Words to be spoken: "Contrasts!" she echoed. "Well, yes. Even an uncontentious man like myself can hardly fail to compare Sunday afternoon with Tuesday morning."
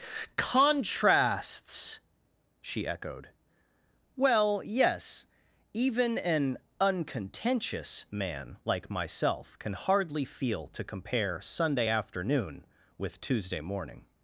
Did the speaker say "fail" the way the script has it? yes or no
no